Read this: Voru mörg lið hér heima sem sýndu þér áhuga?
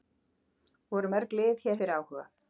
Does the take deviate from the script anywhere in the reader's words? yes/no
yes